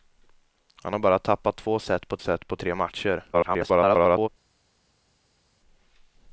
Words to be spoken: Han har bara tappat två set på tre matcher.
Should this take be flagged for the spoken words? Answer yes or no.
yes